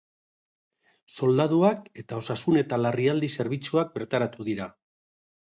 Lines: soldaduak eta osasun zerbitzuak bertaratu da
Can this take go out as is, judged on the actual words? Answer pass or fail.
fail